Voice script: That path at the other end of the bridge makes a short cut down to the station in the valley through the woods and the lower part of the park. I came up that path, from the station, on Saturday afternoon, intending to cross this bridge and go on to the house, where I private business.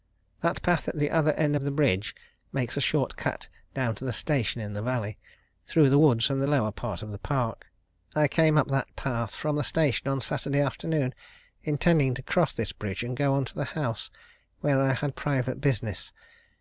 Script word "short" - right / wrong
right